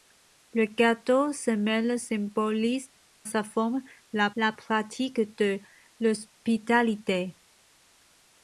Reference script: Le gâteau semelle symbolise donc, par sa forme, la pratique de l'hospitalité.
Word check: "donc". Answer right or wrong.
wrong